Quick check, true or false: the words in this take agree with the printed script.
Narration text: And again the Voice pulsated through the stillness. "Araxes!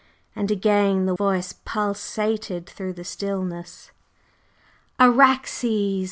true